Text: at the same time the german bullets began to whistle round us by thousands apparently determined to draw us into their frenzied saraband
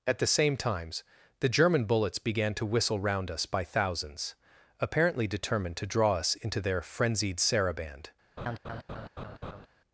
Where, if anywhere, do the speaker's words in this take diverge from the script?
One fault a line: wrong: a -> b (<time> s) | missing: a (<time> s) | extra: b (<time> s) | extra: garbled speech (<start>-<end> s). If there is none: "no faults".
wrong: time -> times (0.6 s)